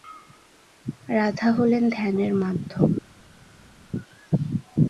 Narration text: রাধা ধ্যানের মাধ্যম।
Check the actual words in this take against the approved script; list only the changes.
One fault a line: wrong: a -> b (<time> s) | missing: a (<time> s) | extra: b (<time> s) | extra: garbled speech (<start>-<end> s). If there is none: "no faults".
extra: হলেন (1.6 s)